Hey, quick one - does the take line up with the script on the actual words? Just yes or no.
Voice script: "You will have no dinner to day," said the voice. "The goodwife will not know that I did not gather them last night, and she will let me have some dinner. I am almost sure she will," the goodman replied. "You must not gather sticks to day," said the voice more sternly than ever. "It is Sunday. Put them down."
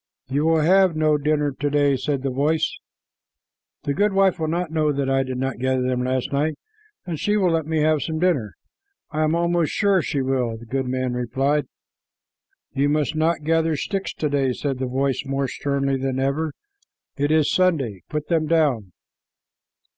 yes